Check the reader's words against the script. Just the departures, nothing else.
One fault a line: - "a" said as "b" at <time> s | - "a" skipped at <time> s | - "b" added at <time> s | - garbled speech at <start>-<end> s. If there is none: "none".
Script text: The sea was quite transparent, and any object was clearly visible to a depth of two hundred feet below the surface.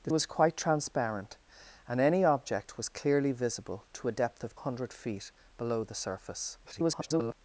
- "sea" skipped at 0.1 s
- "two" skipped at 4.5 s
- garbled speech at 6.6-7.3 s